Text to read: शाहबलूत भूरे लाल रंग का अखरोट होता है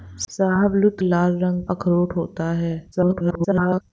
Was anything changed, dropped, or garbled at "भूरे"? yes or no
yes